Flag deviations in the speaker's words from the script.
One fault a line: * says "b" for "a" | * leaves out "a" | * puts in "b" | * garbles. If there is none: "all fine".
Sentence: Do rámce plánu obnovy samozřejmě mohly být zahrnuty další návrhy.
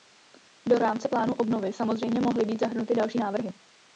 all fine